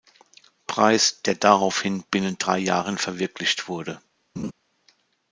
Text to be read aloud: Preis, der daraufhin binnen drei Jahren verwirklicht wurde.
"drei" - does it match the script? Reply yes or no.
yes